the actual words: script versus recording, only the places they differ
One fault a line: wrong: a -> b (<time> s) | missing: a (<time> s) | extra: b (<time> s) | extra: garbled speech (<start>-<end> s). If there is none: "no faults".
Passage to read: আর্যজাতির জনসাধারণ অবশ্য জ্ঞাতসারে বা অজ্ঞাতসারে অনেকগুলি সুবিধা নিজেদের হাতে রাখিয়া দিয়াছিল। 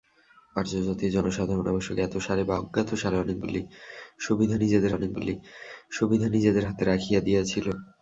extra: অনেকগুলি সুবিধা নিজেদের (4.9 s)